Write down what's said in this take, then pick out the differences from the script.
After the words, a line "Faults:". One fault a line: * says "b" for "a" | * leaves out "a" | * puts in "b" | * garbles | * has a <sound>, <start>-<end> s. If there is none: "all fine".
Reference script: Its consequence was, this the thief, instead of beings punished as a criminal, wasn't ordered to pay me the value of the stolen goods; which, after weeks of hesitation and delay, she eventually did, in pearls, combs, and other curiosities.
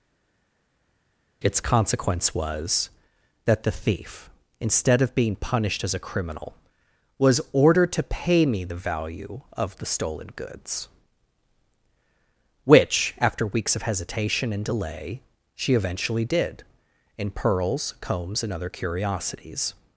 Its consequence was, that the thief, instead of being punished as a criminal, was ordered to pay me the value of the stolen goods; which, after weeks of hesitation and delay, she eventually did, in pearls, combs, and other curiosities.
Faults:
* says "that" for "this"
* says "being" for "beings"
* says "was" for "wasn't"